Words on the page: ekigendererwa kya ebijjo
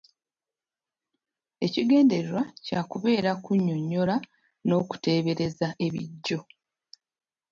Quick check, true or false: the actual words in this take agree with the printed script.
false